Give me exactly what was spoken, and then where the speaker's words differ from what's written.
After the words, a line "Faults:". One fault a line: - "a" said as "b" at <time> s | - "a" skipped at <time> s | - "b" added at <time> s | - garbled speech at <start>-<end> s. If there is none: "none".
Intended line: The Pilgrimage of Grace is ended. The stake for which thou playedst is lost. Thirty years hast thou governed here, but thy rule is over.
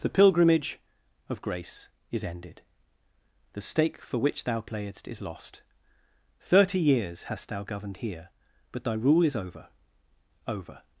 The Pilgrimage of Grace is ended. The stake for which thou playedst is lost. Thirty years hast thou governed here, but thy rule is over over.
Faults:
- "over" added at 10.5 s